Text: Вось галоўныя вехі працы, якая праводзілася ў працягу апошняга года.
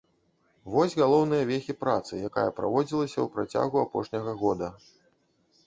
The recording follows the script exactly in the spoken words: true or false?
true